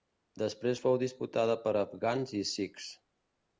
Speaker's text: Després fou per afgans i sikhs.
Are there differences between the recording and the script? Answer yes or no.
yes